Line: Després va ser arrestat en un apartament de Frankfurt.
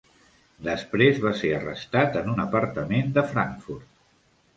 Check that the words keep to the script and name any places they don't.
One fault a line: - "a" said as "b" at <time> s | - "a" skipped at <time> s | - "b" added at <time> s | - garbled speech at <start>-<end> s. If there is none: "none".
none